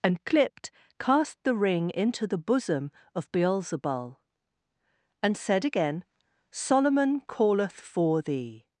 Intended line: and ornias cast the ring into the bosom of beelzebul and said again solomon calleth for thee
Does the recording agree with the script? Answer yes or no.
no